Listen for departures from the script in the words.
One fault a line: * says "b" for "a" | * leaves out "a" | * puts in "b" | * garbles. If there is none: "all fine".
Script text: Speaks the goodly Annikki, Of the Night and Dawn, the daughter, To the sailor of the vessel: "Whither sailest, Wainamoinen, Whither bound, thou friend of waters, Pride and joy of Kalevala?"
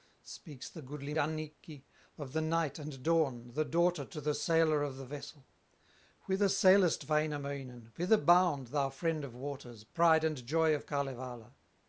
all fine